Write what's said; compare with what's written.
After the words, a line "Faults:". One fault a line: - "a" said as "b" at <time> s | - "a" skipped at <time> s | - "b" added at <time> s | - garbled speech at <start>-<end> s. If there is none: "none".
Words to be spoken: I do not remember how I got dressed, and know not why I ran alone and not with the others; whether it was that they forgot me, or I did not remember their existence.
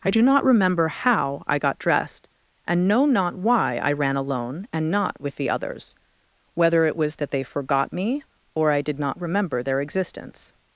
I do not remember how I got dressed, and know not why I ran alone and not with the others; whether it was that they forgot me, or I did not remember their existence.
Faults:
none